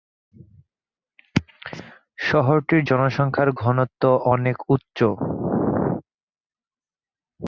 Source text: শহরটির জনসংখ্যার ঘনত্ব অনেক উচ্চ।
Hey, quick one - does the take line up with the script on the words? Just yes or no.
yes